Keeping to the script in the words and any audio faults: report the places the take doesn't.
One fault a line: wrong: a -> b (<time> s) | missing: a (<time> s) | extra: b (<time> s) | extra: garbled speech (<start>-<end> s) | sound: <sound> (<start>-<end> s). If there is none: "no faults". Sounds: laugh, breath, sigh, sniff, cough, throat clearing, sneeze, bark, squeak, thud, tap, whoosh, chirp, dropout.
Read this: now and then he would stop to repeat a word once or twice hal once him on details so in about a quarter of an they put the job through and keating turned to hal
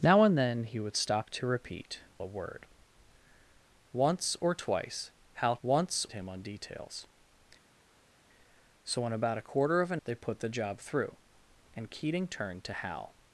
no faults